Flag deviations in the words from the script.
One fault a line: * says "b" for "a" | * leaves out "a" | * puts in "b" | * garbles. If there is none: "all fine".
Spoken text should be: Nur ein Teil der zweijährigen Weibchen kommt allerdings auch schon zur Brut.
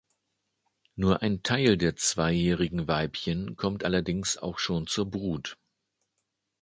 all fine